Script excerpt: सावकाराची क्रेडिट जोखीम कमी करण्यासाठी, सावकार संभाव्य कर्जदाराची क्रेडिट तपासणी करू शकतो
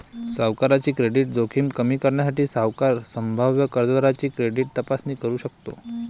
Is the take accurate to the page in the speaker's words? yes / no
yes